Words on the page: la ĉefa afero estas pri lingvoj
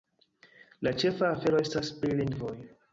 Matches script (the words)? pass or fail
pass